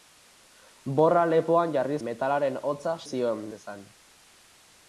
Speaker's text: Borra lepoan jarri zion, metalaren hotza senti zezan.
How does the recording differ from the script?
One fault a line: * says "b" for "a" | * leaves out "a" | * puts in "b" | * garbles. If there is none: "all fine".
* leaves out "zion"
* says "zion" for "senti"